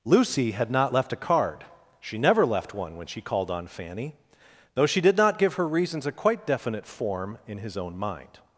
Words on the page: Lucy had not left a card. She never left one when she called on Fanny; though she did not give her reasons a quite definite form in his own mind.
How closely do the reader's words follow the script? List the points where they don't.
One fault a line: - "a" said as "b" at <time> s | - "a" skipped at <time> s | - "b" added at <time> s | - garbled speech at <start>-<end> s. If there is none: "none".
none